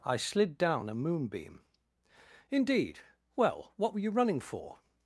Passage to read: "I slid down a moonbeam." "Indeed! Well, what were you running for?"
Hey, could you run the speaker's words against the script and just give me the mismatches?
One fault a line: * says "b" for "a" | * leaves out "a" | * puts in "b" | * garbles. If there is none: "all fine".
all fine